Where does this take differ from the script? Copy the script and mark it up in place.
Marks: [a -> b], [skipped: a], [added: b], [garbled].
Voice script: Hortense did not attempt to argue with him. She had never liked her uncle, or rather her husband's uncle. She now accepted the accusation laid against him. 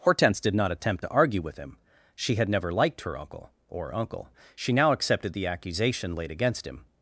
Hortense did not attempt to argue with him. She had never liked her uncle, or [skipped: rather her husband's] uncle. She now accepted the accusation laid against him.